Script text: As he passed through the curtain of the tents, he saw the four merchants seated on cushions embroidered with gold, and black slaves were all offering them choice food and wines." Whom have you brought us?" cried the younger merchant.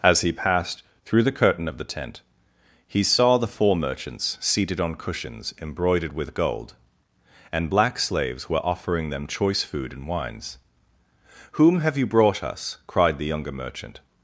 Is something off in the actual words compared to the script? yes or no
yes